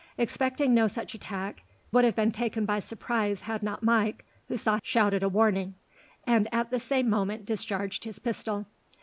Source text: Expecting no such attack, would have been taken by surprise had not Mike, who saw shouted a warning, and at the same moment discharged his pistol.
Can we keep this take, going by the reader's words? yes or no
yes